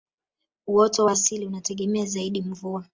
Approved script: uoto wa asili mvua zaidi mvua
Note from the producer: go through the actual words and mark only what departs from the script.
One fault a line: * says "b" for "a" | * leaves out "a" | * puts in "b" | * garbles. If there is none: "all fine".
* says "unategemea" for "mvua"